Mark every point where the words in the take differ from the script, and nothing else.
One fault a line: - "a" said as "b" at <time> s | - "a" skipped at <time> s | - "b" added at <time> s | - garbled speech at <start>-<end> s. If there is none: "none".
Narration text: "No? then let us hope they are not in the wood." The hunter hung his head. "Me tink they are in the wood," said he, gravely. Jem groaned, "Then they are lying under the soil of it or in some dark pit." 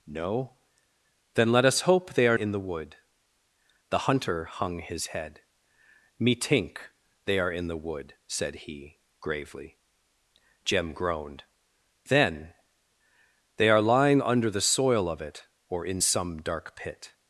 - "not" skipped at 2.4 s